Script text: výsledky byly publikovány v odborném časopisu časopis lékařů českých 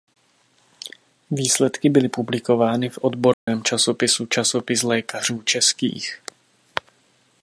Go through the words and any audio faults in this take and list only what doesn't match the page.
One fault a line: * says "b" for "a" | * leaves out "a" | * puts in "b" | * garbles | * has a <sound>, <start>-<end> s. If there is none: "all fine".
* has a dropout, 3.3-3.5 s